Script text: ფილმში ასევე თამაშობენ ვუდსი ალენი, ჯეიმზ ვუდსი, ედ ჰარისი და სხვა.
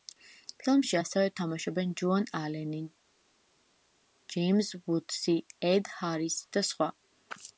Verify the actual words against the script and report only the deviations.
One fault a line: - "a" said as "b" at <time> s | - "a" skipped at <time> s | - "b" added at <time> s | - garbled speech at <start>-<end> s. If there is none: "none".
- "ვუდსი" said as "ჯოან" at 2.0 s